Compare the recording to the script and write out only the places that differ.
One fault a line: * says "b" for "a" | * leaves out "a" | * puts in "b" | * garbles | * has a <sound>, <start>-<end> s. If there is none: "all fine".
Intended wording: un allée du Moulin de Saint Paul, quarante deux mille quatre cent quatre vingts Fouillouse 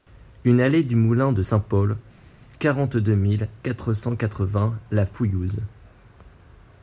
* puts in "La"